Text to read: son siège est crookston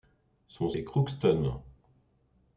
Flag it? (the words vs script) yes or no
yes